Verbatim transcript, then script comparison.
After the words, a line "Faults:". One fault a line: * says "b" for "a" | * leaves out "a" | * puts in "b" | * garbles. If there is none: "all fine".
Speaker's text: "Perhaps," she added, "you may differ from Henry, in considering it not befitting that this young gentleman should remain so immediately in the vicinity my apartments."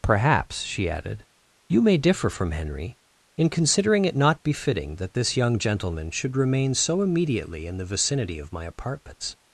"Perhaps," she added, "you may differ from Henry, in considering it not befitting that this young gentleman should remain so immediately in the vicinity of my apartments."
Faults:
* puts in "of"